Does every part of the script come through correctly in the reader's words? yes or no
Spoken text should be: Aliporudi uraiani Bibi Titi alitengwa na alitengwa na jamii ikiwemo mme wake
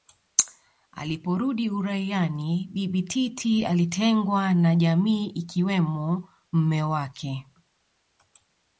no